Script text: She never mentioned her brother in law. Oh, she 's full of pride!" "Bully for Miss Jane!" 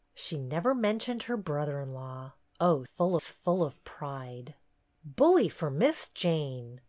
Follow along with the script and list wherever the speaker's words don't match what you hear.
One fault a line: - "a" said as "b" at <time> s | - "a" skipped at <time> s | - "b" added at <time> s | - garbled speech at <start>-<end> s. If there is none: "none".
- "she" said as "full" at 2.8 s